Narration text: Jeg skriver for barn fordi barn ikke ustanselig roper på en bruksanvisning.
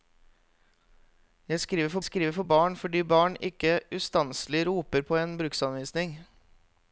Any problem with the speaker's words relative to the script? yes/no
yes